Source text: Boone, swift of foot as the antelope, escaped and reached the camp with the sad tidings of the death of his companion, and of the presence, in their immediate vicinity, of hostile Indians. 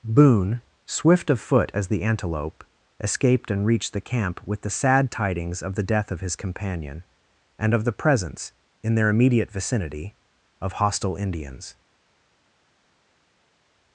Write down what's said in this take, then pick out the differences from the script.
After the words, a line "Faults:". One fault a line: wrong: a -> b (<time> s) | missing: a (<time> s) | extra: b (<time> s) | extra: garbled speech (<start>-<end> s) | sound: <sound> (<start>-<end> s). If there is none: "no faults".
Boone, swift of foot as the antelope, escaped and reached the camp with the sad tidings of the death of his companion, and of the presence, in their immediate vicinity, of hostile Indians.
Faults:
no faults